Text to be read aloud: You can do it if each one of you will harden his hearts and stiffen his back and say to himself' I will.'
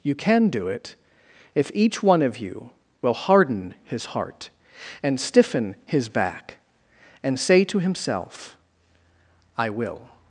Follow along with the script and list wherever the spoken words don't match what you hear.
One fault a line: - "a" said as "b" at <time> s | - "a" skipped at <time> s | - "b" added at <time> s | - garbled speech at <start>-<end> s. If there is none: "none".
- "hearts" said as "heart" at 4.0 s